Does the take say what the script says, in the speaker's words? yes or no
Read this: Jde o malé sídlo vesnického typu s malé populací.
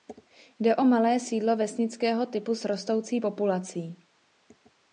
no